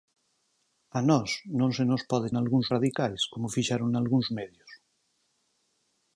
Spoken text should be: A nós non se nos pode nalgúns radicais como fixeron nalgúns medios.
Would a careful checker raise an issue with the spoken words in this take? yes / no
no